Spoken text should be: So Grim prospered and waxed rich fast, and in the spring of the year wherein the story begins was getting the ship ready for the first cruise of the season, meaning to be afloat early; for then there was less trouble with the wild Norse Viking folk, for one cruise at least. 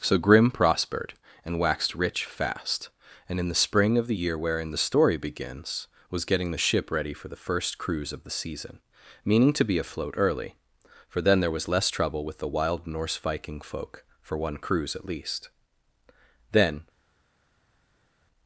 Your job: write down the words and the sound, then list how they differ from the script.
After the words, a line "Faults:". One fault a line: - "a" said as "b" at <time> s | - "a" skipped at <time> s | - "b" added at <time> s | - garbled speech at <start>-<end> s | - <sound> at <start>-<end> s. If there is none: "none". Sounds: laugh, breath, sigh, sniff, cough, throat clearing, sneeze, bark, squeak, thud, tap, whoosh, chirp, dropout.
So Grim prospered and waxed rich fast, and in the spring of the year wherein the story begins was getting the ship ready for the first cruise of the season, meaning to be afloat early; for then there was less trouble with the wild Norse Viking folk, for one cruise at least. Then
Faults:
- "Then" added at 16.5 s